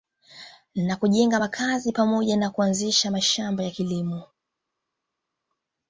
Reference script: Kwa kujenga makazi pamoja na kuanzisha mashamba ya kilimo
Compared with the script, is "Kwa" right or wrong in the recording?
wrong